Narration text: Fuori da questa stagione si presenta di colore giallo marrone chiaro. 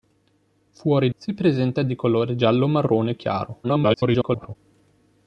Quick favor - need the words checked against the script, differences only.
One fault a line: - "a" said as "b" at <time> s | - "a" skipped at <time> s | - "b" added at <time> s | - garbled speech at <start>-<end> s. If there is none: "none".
- "da questa stagione" skipped at 1.1 s
- garbled speech at 3.6-4.6 s